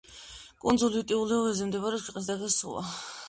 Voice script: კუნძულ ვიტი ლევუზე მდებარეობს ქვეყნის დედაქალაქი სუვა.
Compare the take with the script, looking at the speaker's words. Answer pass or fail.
pass